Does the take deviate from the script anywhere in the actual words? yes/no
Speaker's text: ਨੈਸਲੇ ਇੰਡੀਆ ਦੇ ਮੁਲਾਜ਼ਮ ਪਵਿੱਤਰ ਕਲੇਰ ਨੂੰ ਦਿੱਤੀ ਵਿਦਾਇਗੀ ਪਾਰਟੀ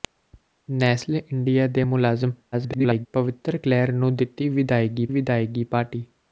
yes